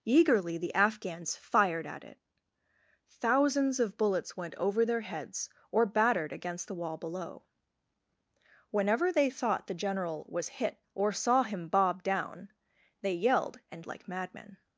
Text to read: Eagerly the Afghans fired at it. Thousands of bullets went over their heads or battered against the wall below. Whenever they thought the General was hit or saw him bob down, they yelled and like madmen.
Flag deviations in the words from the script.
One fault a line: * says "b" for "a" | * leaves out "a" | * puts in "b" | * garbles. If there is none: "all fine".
all fine